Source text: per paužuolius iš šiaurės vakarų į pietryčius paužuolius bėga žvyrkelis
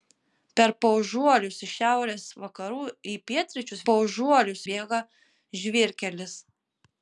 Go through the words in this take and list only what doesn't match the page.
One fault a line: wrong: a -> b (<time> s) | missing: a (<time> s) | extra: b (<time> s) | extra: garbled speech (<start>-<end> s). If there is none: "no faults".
no faults